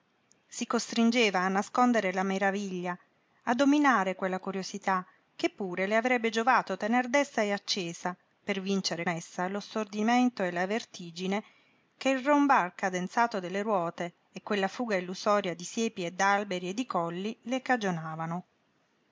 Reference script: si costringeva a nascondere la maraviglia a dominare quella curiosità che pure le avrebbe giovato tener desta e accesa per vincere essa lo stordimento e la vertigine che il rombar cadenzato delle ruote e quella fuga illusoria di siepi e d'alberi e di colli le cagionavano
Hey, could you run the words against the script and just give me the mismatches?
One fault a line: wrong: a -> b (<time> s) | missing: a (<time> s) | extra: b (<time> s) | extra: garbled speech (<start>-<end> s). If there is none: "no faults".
no faults